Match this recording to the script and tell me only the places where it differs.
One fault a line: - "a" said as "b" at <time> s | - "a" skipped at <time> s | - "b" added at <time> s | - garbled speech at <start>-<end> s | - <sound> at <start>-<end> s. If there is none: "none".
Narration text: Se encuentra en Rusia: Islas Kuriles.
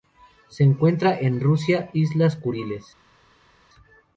none